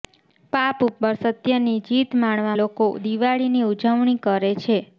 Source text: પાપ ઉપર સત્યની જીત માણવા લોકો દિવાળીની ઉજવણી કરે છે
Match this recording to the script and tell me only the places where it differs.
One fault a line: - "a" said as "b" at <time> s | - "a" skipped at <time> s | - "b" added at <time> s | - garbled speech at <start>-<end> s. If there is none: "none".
none